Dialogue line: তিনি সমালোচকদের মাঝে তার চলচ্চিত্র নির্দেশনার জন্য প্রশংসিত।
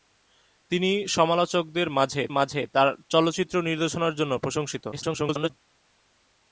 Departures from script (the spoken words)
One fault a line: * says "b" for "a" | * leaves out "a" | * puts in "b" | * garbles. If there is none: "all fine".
* puts in "মাঝে"
* garbles